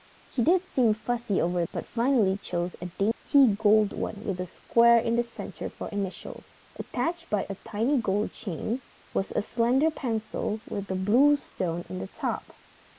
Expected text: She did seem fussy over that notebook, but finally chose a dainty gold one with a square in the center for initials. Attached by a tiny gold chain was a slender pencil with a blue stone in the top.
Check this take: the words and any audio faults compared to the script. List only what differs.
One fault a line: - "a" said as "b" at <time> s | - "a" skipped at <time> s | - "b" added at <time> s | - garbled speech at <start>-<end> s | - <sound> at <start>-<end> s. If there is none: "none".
- "that notebook" skipped at 1.6 s
- dropout at 3.1-3.3 s